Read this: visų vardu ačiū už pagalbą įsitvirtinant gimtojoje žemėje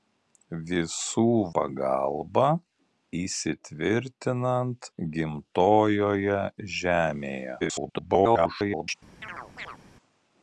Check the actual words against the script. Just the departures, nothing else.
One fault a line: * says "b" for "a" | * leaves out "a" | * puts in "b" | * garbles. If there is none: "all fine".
* leaves out "vardu ačiū už"
* garbles